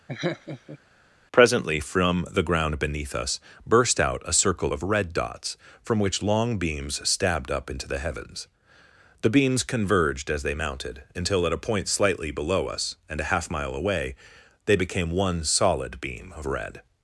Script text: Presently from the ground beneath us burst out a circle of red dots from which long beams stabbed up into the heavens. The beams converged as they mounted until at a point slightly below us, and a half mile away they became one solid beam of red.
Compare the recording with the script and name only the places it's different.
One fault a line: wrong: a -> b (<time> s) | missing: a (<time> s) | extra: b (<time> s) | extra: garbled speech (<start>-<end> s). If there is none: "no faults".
no faults